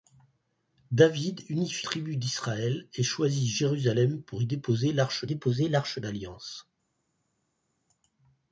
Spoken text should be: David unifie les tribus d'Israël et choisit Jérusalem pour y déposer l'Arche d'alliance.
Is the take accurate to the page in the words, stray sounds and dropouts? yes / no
no